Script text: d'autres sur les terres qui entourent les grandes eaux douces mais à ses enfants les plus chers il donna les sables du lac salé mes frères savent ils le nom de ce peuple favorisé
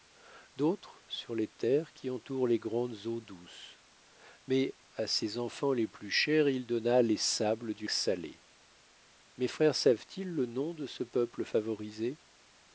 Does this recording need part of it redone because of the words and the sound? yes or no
yes